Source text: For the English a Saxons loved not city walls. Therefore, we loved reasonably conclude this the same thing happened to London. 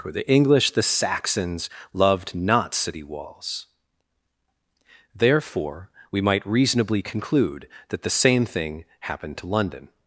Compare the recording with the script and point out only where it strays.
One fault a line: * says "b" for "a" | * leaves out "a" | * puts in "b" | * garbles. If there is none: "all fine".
* says "the" for "a"
* says "might" for "loved"
* says "that" for "this"